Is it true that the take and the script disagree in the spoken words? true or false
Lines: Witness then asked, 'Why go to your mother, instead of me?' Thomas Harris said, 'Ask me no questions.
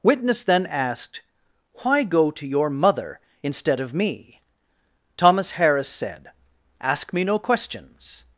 false